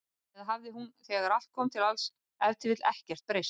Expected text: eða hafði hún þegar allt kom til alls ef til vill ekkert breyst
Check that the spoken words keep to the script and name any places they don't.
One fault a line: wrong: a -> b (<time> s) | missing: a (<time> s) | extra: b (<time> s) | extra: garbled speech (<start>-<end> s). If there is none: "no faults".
no faults